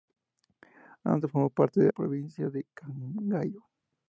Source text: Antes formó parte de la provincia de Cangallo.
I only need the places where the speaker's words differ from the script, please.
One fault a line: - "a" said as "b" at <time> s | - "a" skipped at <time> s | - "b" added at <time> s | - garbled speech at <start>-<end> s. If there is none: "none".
none